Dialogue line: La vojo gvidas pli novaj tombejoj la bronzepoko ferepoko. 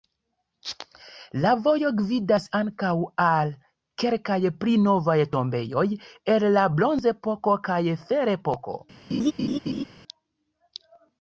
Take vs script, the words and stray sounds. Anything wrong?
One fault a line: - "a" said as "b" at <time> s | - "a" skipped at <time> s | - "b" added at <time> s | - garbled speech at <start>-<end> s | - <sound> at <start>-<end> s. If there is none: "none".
- "ankaŭ al kelkaj" added at 2.6 s
- "el" added at 6.4 s
- "kaj" added at 7.7 s
- laugh at 9.1-9.8 s